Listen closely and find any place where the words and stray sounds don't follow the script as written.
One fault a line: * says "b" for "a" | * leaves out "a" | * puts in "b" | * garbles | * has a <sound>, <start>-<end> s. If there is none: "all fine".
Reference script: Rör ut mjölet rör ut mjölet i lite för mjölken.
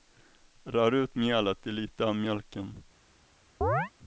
* leaves out "rör ut mjölet"
* says "av" for "för"
* has a chirp, 3.6-3.9 s